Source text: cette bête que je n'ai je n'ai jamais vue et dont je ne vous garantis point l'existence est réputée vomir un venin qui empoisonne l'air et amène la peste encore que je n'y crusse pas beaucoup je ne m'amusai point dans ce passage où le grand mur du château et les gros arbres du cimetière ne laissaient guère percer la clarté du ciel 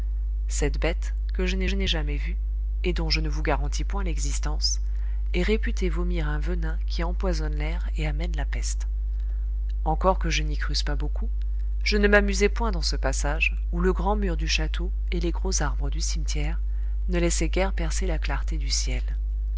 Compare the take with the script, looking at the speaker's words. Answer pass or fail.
pass